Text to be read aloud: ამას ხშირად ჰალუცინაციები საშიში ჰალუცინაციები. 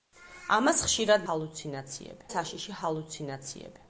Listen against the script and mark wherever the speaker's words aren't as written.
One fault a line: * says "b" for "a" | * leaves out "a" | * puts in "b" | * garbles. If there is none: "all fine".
all fine